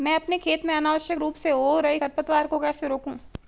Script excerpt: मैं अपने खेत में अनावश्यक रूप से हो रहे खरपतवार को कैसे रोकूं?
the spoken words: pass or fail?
pass